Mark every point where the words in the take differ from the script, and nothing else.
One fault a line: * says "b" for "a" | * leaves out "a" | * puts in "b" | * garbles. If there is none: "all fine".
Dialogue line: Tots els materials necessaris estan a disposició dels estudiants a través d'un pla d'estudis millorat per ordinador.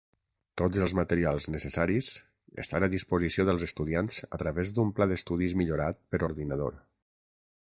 all fine